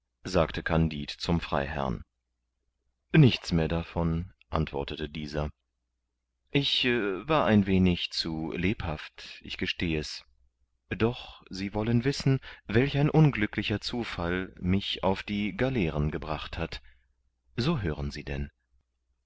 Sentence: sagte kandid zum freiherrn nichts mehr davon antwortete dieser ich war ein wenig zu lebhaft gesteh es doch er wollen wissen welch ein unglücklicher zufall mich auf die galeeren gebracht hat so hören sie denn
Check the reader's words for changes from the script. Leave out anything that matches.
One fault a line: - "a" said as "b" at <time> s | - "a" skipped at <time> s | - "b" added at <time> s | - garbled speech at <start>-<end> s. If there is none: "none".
- "ich" added at 9.4 s
- "er" said as "sie" at 11.5 s